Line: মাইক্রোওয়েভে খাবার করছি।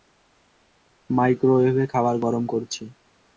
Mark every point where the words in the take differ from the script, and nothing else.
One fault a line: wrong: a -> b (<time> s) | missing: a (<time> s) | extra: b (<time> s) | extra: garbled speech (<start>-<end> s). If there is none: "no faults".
extra: গরম (2.2 s)